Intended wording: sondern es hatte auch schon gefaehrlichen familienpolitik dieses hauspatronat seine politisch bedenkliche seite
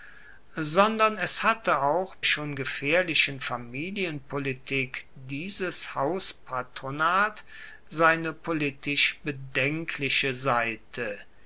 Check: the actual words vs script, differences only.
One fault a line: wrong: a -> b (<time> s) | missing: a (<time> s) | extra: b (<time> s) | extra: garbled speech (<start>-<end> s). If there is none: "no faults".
no faults